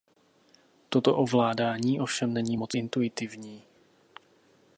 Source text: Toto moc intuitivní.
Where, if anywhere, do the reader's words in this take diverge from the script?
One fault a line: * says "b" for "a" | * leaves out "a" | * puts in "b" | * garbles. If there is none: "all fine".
* puts in "ovládání ovšem není"